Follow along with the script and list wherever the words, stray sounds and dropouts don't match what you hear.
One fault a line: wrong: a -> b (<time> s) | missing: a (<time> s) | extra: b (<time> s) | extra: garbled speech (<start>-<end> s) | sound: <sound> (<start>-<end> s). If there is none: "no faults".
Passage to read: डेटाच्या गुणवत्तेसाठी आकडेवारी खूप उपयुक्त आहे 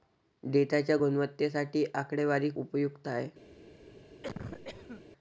missing: खूप (2.5 s)
sound: cough (4.2-5.0 s)